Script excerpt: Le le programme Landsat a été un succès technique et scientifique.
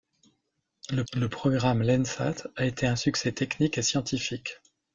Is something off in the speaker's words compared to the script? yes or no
no